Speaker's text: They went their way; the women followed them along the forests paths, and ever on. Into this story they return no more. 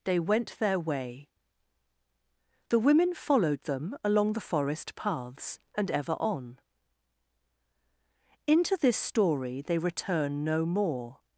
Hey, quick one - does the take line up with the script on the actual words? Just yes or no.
no